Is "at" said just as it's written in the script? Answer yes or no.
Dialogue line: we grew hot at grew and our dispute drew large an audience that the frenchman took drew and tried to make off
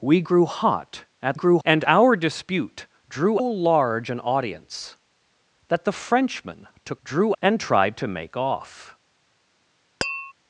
yes